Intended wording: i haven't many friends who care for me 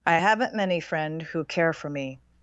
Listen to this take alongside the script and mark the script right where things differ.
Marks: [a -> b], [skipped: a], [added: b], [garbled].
i haven't many [friends -> friend] who care for me